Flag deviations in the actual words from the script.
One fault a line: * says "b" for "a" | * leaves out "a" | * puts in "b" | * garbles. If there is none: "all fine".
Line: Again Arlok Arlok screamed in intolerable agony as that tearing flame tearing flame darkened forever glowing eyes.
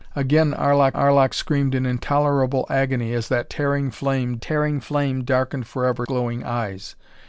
all fine